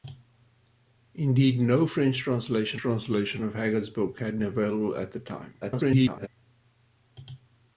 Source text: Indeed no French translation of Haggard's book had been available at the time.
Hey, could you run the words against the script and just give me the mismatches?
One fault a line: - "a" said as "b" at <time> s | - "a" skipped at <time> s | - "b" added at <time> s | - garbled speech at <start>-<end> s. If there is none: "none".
- "translation" added at 2.7 s
- "been" skipped at 4.4 s
- garbled speech at 5.6-6.3 s